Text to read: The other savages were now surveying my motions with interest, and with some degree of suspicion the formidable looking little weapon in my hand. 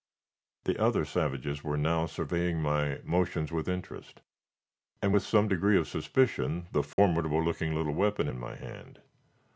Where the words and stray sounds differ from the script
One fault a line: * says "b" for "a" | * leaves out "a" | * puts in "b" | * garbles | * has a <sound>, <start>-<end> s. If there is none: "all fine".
* has a dropout, 6.9-7.0 s